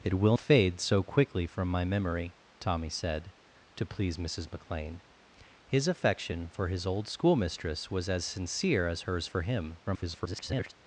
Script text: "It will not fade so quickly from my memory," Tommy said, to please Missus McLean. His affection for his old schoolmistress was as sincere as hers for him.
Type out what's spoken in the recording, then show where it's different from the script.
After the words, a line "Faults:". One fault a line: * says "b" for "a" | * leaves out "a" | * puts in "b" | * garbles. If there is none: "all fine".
"It will fade so quickly from my memory," Tommy said, to please Missus McLean. His affection for his old schoolmistress was as sincere as hers for him. [garbled]
Faults:
* leaves out "not"
* garbles